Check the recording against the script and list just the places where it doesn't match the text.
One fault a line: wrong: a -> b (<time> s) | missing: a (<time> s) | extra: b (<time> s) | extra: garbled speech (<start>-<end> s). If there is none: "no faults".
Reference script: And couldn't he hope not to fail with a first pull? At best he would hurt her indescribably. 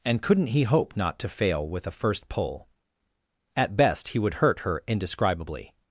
no faults